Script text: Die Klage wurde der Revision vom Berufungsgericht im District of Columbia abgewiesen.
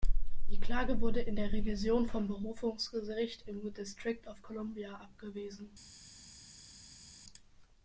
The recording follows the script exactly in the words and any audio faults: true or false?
false